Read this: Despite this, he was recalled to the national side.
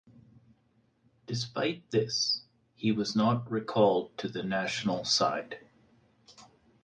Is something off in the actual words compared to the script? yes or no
yes